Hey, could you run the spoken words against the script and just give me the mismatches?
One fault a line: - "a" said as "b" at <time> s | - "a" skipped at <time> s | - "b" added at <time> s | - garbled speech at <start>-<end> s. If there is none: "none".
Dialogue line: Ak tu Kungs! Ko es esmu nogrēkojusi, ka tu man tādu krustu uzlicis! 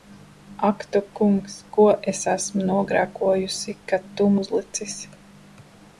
- "man tādu krustu" skipped at 4.3 s